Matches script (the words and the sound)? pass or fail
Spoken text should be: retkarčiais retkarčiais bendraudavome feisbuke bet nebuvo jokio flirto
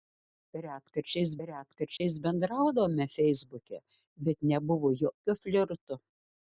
fail